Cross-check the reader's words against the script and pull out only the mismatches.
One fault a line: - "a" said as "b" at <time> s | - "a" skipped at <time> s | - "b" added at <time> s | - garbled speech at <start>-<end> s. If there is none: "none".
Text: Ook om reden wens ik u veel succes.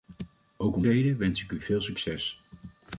none